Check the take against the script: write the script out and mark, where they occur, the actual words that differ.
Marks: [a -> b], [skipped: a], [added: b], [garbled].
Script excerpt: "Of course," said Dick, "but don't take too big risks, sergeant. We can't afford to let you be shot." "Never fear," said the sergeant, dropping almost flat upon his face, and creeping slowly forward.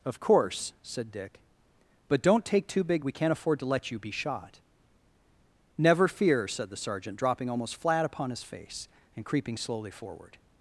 "Of course," said Dick, "but don't take too big [skipped: risks, sergeant.] We can't afford to let you be shot." "Never fear," said the sergeant, dropping almost flat upon his face, and creeping slowly forward.